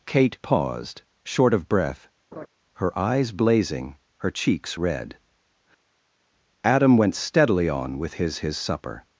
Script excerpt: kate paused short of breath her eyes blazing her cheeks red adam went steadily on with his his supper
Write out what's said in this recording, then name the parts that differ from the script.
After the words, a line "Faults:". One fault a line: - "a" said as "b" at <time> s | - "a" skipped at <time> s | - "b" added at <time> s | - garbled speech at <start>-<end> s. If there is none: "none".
kate paused short of breath her eyes blazing her cheeks red adam went steadily on with his his supper
Faults:
none